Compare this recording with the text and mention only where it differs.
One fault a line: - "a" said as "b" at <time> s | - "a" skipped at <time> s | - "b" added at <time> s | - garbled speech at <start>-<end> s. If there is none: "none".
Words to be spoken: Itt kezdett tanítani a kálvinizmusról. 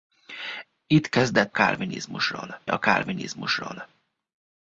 - "tanítani" said as "kálvinizmusról" at 1.5 s